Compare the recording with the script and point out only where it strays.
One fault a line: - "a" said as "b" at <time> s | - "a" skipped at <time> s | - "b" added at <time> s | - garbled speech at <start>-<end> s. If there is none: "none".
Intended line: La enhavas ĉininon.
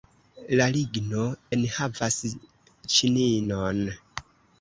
- "ligno" added at 0.8 s